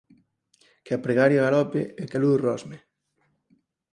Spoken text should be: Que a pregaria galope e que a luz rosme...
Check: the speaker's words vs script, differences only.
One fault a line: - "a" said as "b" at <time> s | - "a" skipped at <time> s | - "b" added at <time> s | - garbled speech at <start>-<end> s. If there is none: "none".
none